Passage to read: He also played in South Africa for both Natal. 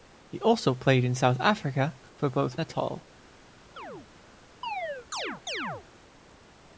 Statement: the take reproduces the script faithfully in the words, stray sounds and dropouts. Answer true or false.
false